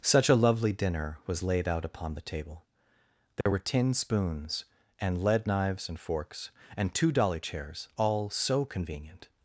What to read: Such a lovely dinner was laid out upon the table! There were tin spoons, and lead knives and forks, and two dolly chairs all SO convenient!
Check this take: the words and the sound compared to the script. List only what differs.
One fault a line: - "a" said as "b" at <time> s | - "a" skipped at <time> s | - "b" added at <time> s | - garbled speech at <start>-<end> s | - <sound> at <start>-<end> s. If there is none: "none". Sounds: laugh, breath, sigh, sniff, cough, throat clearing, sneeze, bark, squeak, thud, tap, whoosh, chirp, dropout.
- dropout at 3.4-3.5 s